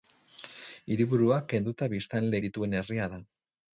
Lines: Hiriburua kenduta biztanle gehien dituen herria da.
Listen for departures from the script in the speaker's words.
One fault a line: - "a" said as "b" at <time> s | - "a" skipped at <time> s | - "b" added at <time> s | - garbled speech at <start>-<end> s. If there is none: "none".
- "gehien" skipped at 2.4 s